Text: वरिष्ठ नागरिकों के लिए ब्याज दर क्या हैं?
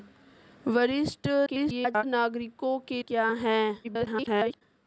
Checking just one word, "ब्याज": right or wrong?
wrong